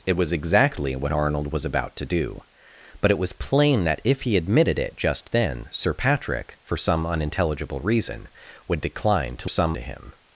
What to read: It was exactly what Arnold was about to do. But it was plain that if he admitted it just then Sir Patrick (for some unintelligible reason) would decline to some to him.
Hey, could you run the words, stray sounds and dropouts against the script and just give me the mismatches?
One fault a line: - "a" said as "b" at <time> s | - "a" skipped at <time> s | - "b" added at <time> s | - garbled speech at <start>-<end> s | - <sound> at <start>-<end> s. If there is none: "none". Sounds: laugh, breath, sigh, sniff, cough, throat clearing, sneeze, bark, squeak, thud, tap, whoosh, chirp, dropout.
none